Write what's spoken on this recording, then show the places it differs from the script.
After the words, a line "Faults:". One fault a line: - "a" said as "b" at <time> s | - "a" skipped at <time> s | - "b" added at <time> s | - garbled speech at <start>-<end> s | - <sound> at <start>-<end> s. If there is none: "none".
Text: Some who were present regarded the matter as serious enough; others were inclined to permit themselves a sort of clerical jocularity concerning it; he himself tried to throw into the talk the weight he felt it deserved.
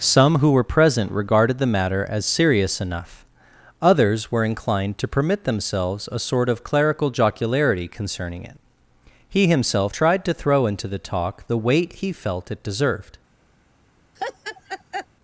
Some who were present regarded the matter as serious enough; others were inclined to permit themselves a sort of clerical jocularity concerning it; he himself tried to throw into the talk the weight he felt it deserved.
Faults:
- laugh at 14.2-15.1 s